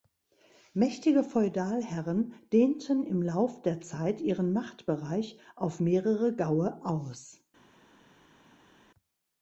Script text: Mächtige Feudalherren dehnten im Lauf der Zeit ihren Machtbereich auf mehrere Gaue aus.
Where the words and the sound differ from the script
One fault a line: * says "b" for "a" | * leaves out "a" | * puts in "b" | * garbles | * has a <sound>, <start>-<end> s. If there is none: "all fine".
all fine